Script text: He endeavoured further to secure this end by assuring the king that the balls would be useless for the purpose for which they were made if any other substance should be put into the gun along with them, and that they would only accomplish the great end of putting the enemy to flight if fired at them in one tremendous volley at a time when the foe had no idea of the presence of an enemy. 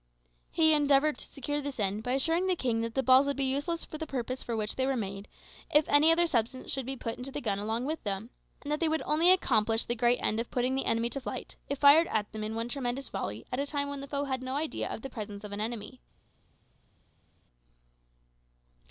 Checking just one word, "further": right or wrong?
wrong